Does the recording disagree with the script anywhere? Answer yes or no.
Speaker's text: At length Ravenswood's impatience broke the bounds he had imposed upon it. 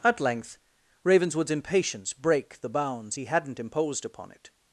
yes